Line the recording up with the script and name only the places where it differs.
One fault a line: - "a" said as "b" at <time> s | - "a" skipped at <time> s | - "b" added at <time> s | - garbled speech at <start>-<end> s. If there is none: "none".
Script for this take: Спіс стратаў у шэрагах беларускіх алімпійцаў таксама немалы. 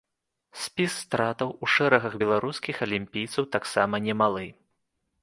none